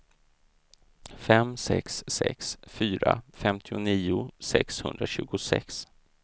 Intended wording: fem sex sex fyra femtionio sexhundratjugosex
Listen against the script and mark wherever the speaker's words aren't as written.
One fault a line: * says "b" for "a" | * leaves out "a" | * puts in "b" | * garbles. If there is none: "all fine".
all fine